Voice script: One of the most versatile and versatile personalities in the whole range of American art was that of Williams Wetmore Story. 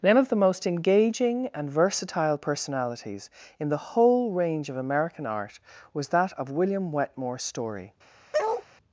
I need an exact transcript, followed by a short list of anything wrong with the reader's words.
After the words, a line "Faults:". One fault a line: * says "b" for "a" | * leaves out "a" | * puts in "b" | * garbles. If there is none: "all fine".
One of the most engaging and versatile personalities in the whole range of American art was that of William Wetmore Story.
Faults:
* says "engaging" for "versatile"
* says "William" for "Williams"